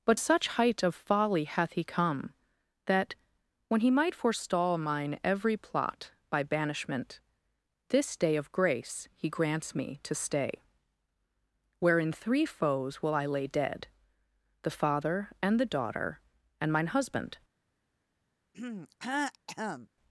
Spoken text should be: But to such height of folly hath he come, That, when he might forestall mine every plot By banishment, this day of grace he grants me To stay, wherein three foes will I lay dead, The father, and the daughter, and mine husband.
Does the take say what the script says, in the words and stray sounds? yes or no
no